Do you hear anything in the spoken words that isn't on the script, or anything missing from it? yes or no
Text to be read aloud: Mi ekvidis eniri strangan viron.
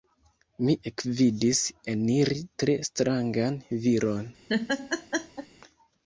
yes